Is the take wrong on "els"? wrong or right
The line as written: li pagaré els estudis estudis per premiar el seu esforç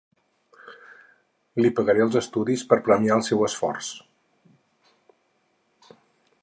right